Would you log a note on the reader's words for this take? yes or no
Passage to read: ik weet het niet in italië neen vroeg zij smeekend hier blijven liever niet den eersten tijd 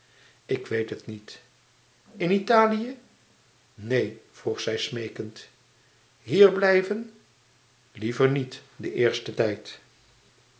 no